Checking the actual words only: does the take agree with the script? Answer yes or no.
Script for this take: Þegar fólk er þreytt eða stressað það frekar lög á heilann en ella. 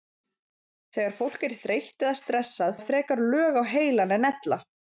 yes